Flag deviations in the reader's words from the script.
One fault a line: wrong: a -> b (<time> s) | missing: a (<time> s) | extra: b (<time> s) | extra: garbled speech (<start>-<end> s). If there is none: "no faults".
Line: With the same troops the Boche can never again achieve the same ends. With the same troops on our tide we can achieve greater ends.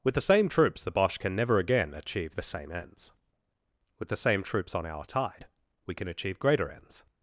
no faults